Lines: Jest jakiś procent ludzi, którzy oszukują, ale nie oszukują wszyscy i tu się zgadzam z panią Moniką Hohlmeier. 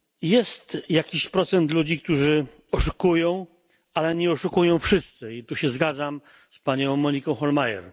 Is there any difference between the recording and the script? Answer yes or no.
no